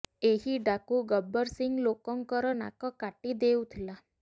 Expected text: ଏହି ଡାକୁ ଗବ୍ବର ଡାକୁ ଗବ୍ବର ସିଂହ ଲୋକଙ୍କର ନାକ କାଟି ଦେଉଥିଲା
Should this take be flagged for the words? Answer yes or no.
yes